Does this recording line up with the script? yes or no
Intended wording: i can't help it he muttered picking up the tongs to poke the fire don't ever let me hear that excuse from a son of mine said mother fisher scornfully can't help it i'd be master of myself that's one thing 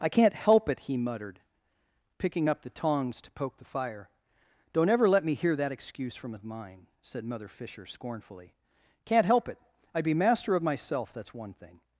no